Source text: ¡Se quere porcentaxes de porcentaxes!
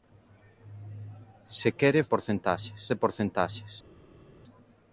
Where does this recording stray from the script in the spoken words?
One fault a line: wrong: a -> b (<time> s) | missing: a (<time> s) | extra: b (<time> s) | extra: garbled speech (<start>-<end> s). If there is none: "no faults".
no faults